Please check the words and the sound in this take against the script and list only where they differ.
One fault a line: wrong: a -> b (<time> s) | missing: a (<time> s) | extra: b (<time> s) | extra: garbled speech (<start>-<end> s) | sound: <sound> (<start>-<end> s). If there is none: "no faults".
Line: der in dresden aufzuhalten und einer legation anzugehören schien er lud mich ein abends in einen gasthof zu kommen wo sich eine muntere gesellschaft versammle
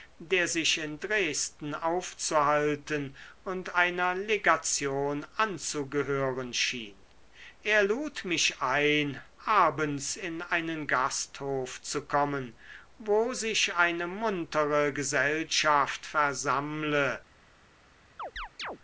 extra: sich (0.5 s)
sound: chirp (18.2-18.8 s)